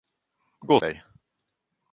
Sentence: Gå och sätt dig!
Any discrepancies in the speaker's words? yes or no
yes